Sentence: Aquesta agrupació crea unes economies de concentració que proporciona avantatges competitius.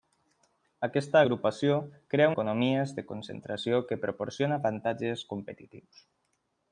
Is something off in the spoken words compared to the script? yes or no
yes